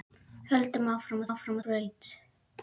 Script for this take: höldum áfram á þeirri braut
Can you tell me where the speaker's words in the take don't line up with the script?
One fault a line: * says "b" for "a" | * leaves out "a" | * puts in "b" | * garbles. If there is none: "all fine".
* says "áfram" for "þeirri"